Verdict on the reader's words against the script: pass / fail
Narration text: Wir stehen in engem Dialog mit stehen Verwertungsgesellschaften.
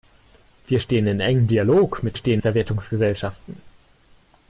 pass